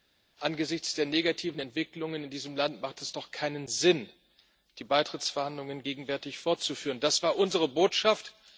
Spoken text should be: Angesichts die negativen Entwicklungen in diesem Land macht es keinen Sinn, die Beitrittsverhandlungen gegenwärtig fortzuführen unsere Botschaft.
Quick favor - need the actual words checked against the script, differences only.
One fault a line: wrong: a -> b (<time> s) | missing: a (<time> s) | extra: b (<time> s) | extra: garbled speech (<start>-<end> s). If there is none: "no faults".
wrong: die -> der (0.9 s)
extra: doch (3.1 s)
extra: das war (7.0 s)